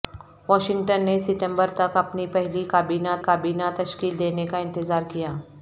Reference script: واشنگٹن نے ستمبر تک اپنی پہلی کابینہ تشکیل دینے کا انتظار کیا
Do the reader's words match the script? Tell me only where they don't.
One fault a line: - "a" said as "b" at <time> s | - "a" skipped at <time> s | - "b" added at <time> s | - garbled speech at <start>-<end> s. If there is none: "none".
- "کابینہ" added at 3.2 s